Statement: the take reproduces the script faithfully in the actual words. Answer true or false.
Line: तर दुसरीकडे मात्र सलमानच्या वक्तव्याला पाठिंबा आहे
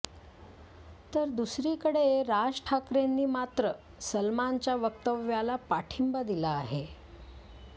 false